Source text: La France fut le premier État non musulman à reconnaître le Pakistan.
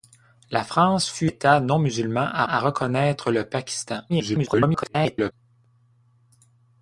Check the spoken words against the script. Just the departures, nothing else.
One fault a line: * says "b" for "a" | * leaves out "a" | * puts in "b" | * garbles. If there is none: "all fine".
* leaves out "le premier"
* puts in "à"
* garbles